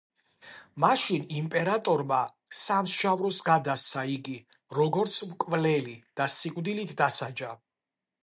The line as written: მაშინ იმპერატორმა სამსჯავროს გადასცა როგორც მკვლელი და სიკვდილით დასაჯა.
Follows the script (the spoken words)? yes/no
no